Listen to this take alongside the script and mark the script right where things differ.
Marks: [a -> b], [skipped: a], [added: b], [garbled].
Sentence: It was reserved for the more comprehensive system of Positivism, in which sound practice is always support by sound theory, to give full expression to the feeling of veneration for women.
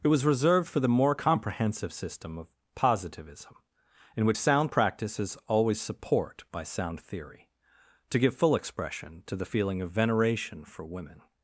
It was reserved for the more comprehensive system of Positivism, in which sound practice is always support by sound theory, to give full expression to the feeling of veneration for women.